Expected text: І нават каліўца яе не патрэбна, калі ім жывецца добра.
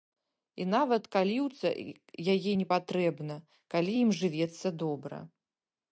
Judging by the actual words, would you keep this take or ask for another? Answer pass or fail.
pass